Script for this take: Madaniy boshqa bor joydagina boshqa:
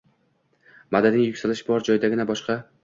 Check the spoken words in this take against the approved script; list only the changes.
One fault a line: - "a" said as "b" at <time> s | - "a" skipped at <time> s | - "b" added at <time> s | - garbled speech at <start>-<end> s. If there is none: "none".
- "boshqa" said as "yuksalish" at 1.3 s